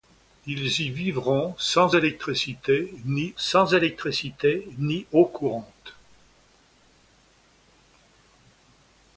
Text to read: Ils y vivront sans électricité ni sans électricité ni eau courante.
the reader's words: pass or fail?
pass